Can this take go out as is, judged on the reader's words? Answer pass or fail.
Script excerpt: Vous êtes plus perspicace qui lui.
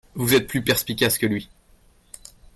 fail